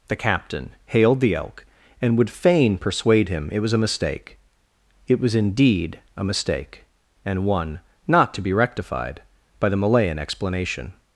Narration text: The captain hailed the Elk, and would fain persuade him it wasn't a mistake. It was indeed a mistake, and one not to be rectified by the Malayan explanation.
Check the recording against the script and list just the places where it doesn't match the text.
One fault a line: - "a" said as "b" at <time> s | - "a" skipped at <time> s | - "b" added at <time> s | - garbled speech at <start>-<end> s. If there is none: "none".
- "wasn't" said as "was" at 3.6 s